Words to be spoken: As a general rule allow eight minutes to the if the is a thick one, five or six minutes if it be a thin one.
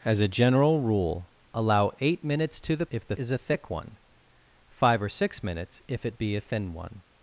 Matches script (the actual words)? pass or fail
pass